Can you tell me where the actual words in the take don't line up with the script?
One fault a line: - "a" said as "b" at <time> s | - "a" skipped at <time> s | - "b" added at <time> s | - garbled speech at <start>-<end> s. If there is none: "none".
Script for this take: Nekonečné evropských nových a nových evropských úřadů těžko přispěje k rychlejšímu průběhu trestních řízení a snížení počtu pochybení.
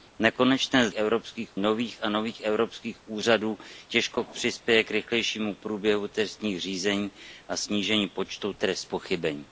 none